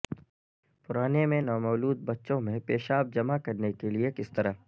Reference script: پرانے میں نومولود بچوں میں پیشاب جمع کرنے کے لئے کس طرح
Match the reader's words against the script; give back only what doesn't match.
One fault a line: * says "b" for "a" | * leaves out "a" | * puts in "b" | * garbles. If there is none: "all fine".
all fine